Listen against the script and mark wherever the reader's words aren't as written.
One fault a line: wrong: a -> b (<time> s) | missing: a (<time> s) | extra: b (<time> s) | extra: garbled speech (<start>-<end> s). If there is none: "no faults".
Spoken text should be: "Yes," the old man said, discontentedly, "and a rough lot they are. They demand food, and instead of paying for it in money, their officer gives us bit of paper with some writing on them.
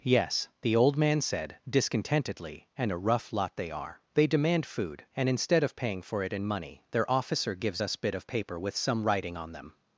no faults